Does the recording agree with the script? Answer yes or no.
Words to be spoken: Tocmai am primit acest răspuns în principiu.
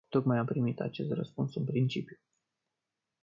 yes